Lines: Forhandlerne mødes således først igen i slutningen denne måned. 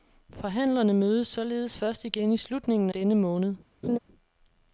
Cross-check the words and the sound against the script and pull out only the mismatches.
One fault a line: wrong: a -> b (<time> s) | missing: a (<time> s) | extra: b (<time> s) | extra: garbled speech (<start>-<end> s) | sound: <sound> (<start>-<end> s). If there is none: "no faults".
sound: laugh (3.8-4.0 s)